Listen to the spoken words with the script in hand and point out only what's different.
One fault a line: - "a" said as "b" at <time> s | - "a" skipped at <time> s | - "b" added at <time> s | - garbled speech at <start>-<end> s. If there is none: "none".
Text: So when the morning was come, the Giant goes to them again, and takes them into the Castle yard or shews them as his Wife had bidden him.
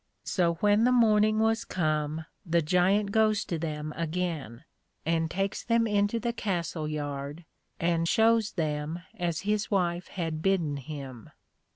- "or" said as "and" at 7.8 s